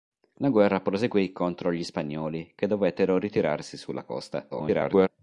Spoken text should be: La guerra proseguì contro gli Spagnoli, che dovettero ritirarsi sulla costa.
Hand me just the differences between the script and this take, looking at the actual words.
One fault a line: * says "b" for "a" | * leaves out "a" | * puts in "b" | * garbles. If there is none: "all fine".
* garbles